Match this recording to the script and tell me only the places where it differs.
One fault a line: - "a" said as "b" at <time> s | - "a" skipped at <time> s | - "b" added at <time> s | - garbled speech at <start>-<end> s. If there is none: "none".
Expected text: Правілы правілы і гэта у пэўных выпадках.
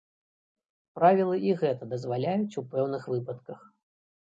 - "правілы" skipped at 1.4 s
- "дазваляюць" added at 1.9 s